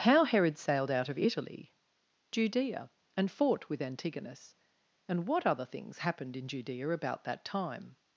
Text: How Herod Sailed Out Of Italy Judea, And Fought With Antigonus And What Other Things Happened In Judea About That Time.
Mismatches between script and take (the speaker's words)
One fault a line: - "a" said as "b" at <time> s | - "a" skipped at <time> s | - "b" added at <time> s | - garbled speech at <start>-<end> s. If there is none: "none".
none